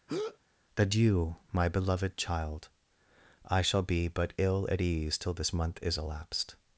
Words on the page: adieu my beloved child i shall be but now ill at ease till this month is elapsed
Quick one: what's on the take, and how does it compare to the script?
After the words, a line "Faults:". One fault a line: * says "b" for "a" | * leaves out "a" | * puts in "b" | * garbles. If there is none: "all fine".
adieu my beloved child i shall be but ill at ease till this month is elapsed
Faults:
* leaves out "now"